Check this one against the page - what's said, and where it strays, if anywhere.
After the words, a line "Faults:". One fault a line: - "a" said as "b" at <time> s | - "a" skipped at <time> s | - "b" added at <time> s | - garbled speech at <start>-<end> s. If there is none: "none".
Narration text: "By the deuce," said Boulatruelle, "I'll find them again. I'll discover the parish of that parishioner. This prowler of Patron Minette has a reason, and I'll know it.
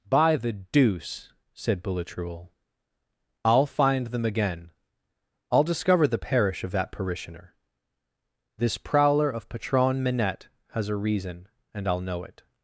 "By the deuce," said Boulatruelle, "I'll find them again. I'll discover the parish of that parishioner. This prowler of Patron Minette has a reason, and I'll know it.
Faults:
none